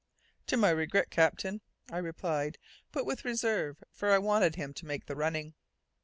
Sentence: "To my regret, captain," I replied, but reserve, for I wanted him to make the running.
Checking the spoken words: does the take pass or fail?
fail